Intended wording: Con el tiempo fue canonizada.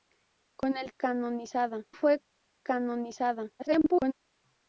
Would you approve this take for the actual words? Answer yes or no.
no